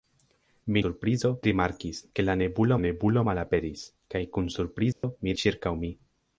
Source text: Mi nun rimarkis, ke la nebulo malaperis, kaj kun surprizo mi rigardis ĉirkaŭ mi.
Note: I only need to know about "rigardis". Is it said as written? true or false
false